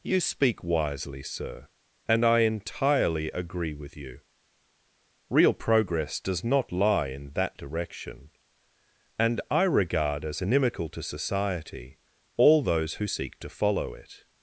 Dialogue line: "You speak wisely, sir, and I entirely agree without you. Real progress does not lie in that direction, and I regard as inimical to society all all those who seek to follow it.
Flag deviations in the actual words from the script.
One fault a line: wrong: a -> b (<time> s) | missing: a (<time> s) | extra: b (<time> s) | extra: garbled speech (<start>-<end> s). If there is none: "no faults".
wrong: without -> with (3.7 s)
missing: all (12.6 s)